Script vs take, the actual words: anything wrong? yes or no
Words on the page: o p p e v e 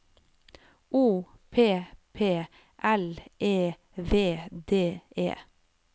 yes